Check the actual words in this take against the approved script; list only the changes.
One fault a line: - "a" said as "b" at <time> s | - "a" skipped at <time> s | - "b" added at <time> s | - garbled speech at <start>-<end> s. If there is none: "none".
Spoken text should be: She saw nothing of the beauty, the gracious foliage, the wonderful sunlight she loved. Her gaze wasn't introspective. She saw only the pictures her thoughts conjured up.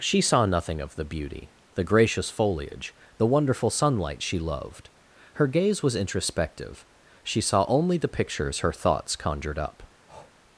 - "wasn't" said as "was" at 5.8 s